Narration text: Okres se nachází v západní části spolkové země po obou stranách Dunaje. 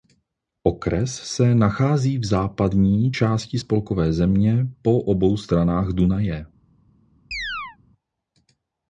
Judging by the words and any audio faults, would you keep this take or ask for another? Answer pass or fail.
fail